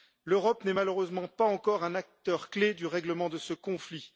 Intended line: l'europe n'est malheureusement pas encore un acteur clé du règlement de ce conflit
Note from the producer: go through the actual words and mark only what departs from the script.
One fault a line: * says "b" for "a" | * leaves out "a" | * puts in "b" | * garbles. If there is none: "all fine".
all fine